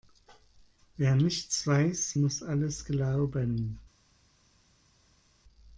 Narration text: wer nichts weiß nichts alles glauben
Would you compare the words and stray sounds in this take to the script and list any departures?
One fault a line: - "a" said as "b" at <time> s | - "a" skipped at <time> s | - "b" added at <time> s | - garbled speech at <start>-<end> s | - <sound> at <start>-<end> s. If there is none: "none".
- "nichts" said as "muss" at 2.1 s